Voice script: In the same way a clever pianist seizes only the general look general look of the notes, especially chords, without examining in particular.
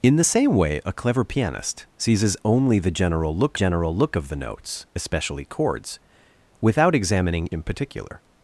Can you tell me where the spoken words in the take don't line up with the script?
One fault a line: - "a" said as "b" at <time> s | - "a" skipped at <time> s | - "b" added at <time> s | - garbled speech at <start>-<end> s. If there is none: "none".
none